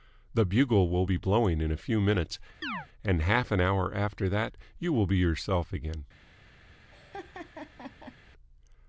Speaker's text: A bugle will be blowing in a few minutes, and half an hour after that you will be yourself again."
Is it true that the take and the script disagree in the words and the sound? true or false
true